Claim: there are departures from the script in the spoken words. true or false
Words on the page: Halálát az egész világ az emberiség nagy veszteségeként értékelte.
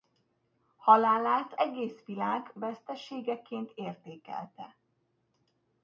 true